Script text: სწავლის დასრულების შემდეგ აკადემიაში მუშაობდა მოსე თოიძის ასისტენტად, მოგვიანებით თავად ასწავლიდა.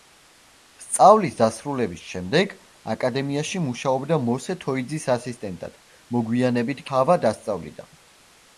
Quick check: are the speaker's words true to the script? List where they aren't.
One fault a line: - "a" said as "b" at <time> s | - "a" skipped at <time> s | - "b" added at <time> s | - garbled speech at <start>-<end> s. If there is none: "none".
none